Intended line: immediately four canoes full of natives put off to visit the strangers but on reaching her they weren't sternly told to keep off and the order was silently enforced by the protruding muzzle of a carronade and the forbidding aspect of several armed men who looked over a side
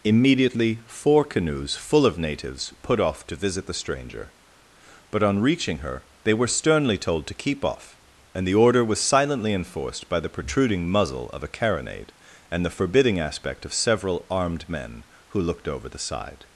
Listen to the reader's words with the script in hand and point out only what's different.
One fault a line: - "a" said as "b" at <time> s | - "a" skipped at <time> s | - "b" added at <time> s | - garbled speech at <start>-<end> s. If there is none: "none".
- "strangers" said as "stranger" at 3.7 s
- "weren't" said as "were" at 6.3 s
- "a" said as "the" at 15.9 s